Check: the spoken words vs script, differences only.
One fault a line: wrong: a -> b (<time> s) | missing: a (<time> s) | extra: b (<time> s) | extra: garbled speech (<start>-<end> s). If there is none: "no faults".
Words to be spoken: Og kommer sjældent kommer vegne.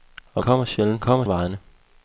no faults